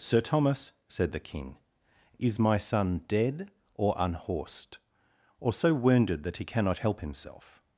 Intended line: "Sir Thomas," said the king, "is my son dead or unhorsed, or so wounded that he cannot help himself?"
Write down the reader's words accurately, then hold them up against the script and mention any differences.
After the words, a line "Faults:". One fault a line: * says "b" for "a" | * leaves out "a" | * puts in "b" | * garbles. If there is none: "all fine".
"Sir Thomas," said the king, "is my son dead or unhorsed, or so wounded that he cannot help himself?"
Faults:
all fine